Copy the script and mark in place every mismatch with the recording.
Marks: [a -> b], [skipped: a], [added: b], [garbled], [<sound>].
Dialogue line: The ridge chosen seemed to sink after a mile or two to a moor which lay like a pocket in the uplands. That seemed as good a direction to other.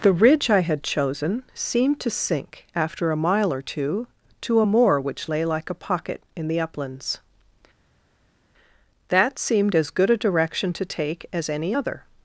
The ridge [added: I had] chosen seemed to sink after a mile or two to a moor which lay like a pocket in the uplands. That seemed as good a direction to [added: take as any] other.